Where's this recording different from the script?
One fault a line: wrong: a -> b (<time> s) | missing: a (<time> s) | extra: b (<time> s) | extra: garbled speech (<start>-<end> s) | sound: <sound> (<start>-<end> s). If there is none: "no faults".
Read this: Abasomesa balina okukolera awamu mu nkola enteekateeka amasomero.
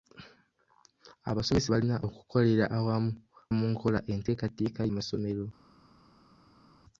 no faults